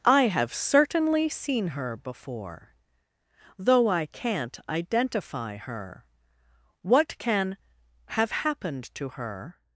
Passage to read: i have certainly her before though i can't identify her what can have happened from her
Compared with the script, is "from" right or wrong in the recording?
wrong